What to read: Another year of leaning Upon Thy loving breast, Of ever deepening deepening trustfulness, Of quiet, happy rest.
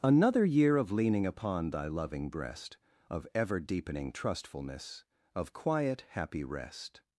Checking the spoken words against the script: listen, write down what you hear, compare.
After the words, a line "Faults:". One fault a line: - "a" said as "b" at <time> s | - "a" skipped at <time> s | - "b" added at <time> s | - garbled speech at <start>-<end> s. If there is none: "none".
Another year of leaning Upon Thy loving breast, Of ever deepening trustfulness, Of quiet, happy rest.
Faults:
- "deepening" skipped at 4.1 s